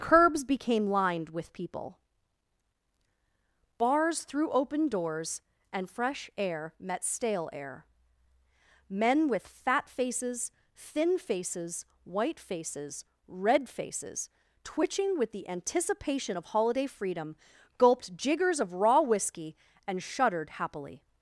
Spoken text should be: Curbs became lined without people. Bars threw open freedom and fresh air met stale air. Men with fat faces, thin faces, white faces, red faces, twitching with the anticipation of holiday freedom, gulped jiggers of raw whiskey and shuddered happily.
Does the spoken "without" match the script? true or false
false